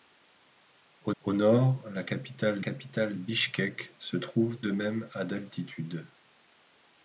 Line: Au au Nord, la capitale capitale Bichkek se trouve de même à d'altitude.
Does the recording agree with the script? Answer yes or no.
yes